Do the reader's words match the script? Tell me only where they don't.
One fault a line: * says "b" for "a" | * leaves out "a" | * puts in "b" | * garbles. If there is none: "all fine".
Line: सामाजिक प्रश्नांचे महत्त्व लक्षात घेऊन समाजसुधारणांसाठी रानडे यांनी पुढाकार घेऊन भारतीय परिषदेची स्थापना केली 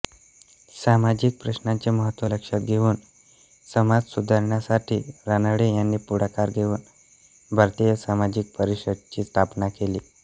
* puts in "सामाजिक"